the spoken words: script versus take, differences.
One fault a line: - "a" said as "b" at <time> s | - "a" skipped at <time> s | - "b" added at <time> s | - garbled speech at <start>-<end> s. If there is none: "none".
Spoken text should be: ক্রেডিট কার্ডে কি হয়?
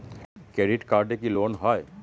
- "লোন" added at 1.4 s